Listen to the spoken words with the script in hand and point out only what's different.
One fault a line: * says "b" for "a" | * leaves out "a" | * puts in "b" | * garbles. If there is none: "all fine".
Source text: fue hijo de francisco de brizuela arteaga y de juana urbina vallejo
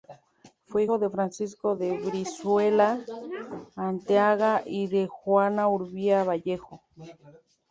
all fine